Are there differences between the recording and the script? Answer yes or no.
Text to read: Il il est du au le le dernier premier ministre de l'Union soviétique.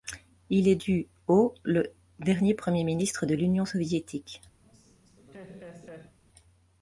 yes